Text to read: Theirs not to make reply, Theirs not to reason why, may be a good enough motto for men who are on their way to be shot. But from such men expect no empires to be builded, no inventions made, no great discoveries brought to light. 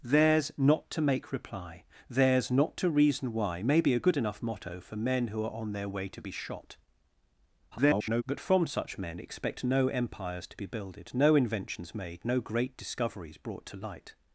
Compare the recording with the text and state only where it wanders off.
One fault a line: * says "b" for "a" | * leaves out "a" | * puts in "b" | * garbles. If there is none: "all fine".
* garbles